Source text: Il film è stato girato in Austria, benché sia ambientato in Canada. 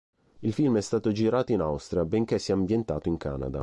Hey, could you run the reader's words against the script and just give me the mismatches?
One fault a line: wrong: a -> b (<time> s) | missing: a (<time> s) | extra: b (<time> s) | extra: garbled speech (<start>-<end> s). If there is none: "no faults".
no faults